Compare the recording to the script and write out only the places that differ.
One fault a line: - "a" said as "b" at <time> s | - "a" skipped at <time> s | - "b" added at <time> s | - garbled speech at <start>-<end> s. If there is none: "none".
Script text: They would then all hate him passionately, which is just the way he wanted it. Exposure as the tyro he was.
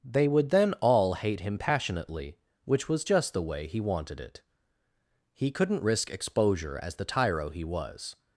- "is" said as "was" at 2.9 s
- "He couldn't risk" added at 5.3 s